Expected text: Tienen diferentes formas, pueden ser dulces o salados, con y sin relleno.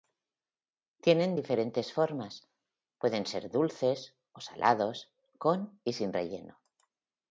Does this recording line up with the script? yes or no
yes